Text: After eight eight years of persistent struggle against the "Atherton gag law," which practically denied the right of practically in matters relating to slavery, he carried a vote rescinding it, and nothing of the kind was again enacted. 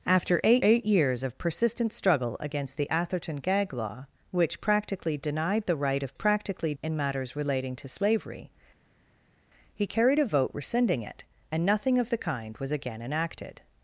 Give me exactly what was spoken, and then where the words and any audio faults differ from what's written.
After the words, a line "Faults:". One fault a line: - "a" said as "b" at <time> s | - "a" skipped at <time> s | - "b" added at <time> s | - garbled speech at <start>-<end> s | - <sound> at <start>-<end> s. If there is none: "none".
After eight eight years of persistent struggle against the "Atherton gag law," which practically denied the right of practically in matters relating to slavery, he carried a vote rescinding it, and nothing of the kind was again enacted.
Faults:
none